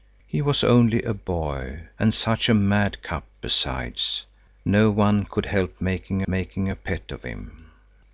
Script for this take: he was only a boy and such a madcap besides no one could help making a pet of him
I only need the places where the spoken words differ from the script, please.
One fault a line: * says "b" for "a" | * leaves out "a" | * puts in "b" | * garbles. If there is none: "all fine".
* puts in "making"